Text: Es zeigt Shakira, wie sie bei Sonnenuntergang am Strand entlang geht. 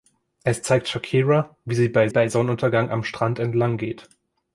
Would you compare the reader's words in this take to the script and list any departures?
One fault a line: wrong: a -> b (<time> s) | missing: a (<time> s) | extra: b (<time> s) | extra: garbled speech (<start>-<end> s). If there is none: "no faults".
extra: bei (2.1 s)